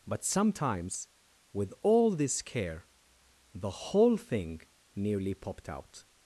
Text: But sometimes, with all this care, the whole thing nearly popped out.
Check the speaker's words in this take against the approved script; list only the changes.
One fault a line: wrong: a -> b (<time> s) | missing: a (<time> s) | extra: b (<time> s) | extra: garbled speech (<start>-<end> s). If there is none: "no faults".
no faults